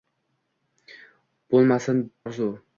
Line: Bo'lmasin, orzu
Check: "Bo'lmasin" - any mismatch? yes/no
no